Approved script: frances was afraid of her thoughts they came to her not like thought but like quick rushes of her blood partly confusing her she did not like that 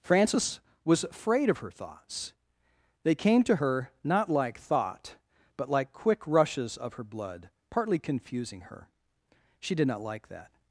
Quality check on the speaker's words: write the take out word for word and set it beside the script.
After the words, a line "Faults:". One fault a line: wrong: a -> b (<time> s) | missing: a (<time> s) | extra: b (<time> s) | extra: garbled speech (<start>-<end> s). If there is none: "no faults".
frances was afraid of her thoughts they came to her not like thought but like quick rushes of her blood partly confusing her she did not like that
Faults:
no faults